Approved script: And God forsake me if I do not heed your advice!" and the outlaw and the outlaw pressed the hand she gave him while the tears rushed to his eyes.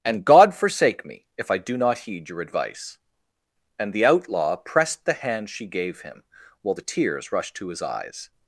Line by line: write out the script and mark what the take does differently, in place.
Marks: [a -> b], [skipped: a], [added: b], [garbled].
And God forsake me if I do not heed your advice!" and the outlaw [skipped: and the outlaw] pressed the hand she gave him while the tears rushed to his eyes.